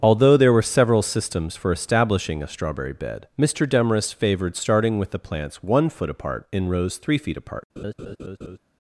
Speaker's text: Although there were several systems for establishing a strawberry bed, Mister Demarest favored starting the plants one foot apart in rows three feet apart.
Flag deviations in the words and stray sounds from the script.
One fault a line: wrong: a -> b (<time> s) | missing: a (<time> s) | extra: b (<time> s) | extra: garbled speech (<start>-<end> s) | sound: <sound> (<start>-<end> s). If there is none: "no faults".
extra: with (5.0 s)
sound: laugh (7.8-8.6 s)